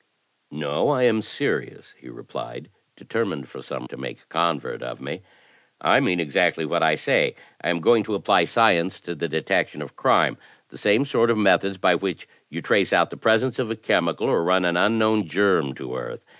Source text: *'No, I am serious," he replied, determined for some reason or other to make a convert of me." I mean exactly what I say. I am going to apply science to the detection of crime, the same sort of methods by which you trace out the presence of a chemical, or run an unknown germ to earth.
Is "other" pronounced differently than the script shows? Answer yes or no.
yes